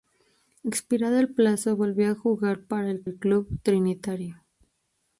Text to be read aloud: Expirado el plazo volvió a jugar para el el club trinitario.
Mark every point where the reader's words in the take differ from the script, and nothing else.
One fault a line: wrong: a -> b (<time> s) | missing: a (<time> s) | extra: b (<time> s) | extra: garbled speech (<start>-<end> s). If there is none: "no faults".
no faults